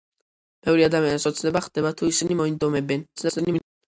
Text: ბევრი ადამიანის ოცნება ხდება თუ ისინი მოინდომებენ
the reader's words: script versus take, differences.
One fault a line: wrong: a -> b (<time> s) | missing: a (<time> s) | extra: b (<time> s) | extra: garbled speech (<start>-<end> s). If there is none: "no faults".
extra: garbled speech (3.2-3.6 s)